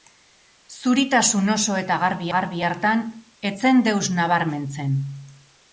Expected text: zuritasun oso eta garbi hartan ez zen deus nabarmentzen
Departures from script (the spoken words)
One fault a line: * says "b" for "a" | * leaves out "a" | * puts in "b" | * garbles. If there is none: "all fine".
* puts in "garbi"